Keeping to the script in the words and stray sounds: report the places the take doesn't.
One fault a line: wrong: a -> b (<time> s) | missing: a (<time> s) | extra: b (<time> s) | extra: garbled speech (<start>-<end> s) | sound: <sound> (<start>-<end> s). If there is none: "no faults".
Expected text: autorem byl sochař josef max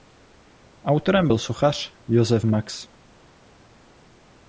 no faults